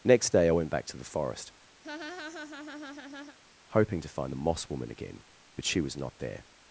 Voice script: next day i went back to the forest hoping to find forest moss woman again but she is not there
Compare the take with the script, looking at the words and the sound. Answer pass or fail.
fail